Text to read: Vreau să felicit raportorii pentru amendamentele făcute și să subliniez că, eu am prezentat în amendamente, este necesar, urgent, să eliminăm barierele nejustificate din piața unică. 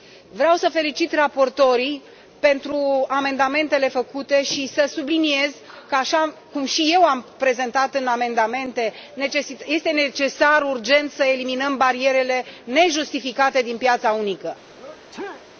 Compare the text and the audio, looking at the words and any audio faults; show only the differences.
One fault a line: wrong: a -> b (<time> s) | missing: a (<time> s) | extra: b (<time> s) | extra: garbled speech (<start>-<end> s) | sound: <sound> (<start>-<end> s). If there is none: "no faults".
extra: așa cum și (5.9 s)
sound: sneeze (14.8-15.5 s)